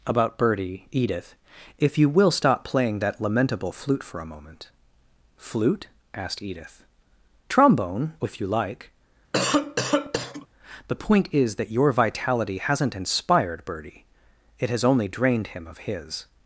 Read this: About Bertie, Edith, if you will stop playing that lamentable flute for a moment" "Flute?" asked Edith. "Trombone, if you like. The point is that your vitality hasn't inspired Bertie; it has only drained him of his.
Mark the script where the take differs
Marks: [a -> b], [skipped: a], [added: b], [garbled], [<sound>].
About Bertie, Edith, if you will stop playing that lamentable flute for a moment" "Flute?" asked Edith. "Trombone, if you like. [cough] The point is that your vitality hasn't inspired Bertie; it has only drained him of his.